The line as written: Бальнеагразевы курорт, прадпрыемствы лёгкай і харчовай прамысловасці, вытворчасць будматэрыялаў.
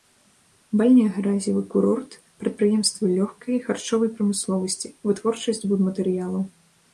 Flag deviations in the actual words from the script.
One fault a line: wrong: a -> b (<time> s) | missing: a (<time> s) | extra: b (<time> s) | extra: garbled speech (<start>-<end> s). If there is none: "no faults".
no faults